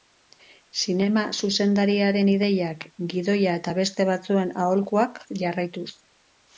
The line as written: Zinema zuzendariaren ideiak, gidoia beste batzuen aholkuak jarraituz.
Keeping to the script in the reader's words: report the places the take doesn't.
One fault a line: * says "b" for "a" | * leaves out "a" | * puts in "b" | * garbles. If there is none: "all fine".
* puts in "eta"